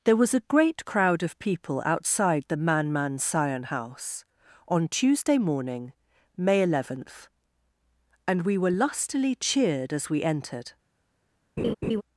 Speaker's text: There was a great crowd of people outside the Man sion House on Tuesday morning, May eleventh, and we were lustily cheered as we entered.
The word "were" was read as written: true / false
true